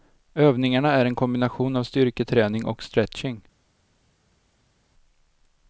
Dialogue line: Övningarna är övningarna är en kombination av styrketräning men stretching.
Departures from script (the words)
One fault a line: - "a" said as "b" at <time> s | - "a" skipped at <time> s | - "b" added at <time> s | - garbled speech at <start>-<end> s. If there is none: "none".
- "övningarna är" skipped at 1.1 s
- "men" said as "och" at 2.7 s